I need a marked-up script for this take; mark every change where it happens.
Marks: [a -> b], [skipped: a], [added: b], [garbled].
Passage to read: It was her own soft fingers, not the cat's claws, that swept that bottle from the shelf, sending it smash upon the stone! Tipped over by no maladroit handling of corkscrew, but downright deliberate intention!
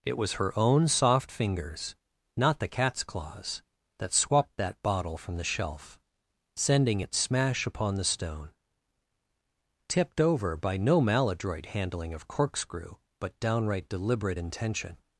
It was her own soft fingers, not the cat's claws, that swept that bottle from the shelf, sending it smash upon the stone! Tipped over by no maladroit handling of corkscrew, but downright deliberate intention!